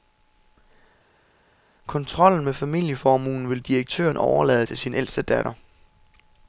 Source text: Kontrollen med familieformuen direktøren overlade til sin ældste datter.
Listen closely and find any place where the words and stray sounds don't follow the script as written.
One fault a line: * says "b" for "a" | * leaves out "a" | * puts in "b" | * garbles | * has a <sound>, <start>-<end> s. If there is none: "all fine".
* puts in "vil"